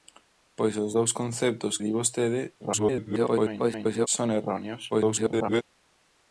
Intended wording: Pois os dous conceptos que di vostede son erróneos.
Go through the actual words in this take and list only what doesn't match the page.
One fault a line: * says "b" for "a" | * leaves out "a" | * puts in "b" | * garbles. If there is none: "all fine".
* leaves out "que"
* garbles
* garbles